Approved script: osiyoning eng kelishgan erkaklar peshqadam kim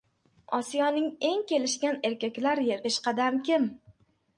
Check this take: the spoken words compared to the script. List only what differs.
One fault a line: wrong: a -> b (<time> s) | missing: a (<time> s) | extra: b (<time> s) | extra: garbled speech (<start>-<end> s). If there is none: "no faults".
no faults